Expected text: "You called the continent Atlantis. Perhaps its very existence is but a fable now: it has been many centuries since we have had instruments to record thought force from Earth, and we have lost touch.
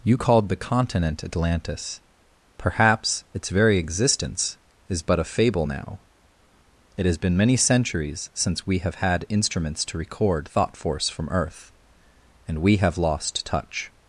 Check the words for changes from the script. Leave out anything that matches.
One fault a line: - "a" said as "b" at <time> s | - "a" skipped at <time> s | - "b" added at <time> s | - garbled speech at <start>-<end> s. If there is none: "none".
none